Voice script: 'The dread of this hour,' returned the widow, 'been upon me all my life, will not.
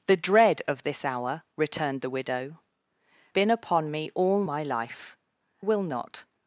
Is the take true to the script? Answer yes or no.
yes